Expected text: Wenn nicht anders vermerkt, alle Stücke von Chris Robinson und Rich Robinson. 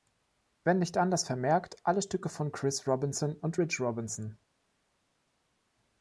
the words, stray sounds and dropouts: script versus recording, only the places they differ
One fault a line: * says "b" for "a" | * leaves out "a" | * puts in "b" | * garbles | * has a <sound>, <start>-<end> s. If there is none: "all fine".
all fine